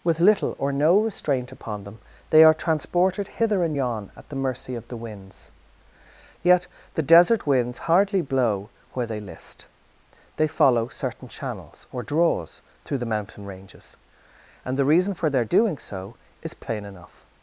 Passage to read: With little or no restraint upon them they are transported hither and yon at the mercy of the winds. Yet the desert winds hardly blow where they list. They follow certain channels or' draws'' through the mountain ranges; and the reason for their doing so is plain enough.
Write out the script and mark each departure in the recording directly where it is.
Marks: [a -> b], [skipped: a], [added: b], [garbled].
With little or no restraint upon them they are transported hither and yon at the mercy of the winds. Yet the desert winds hardly blow where they list. They follow certain channels or' draws'' through the mountain ranges; and the reason for their doing so is plain enough.